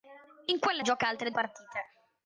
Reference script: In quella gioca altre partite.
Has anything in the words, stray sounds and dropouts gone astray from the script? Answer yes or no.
no